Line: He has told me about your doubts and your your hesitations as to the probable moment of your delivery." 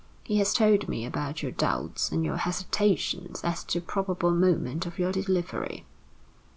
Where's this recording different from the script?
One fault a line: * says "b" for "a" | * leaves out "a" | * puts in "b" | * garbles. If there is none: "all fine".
* leaves out "your"